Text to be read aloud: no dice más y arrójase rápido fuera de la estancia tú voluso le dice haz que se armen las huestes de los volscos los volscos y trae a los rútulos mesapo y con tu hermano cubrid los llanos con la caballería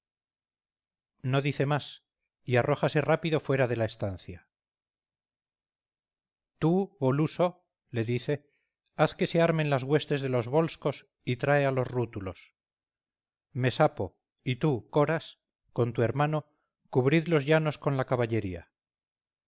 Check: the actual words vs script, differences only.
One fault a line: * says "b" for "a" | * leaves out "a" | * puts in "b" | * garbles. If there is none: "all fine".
* leaves out "los volscos"
* puts in "tú coras"